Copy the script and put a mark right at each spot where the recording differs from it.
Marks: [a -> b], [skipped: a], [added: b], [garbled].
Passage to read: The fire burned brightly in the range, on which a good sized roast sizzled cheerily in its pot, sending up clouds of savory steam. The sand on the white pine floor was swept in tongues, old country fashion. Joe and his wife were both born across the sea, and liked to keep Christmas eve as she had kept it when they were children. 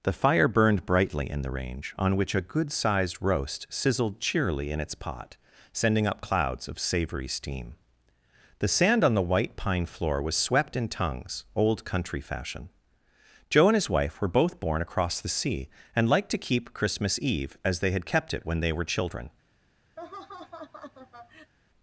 The fire burned brightly in the range, on which a good sized roast sizzled cheerily in its pot, sending up clouds of savory steam. The sand on the white pine floor was swept in tongues, old country fashion. Joe and his wife were both born across the sea, and liked to keep Christmas eve as [she -> they] had kept it when they were children.